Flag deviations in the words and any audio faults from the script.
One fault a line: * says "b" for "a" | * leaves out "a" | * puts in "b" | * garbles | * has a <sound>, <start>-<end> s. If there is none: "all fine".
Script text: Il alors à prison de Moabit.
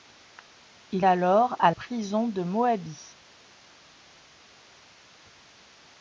all fine